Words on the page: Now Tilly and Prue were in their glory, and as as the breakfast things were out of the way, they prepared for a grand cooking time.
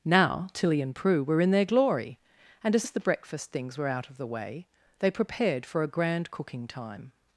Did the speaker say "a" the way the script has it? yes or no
yes